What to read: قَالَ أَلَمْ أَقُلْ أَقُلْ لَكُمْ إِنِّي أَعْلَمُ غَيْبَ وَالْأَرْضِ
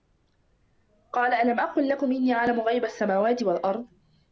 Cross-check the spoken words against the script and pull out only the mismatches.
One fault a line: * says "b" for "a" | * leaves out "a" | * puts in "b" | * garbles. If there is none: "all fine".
* leaves out "أَقُلْ"
* puts in "السَّمَاوَاتِ"